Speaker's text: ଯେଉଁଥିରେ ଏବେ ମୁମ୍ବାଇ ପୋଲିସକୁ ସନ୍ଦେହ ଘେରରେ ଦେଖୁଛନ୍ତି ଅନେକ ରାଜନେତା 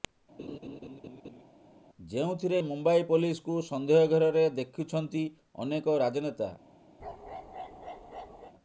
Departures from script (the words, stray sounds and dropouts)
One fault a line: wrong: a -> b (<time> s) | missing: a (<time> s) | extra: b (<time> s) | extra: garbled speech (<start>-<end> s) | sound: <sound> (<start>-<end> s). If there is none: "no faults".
sound: laugh (0.4-1.4 s)
missing: ଏବେ (2.6 s)
sound: bark (7.0-8.5 s)